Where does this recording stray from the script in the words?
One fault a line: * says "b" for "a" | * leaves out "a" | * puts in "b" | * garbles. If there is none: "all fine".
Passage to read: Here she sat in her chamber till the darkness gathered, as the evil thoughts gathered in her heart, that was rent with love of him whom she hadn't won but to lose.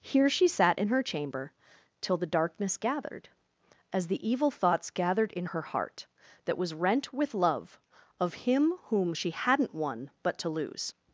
all fine